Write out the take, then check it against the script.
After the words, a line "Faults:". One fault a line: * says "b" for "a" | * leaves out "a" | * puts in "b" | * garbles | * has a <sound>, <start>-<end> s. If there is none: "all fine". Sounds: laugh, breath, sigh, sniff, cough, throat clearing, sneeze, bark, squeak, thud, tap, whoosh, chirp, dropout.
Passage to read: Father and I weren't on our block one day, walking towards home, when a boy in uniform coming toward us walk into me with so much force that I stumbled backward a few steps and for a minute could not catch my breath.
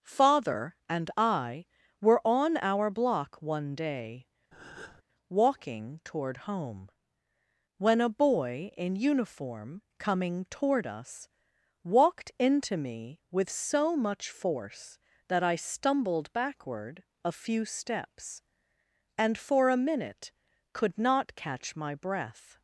Father and I were on our block one day, walking toward home, when a boy in uniform coming toward us walked into me with so much force that I stumbled backward a few steps and for a minute could not catch my breath.
Faults:
* says "were" for "weren't"
* has a breath, 4.5-5.0 s
* says "toward" for "towards"
* says "walked" for "walk"